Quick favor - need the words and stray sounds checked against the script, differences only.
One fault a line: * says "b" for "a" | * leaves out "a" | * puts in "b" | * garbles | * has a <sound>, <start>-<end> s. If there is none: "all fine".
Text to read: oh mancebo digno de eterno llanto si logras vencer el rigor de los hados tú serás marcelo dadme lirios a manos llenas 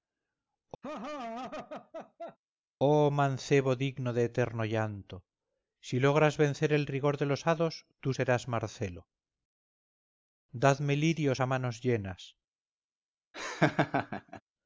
* has a laugh, 0.8-2.4 s
* has a laugh, 13.3-14.4 s